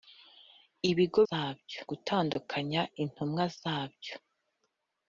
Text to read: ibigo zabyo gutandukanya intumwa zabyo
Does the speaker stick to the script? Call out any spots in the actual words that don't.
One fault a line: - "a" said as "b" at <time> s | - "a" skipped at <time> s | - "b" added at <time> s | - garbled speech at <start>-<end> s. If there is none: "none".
none